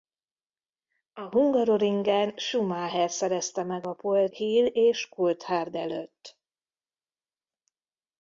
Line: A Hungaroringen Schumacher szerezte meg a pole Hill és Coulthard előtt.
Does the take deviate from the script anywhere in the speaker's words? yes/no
no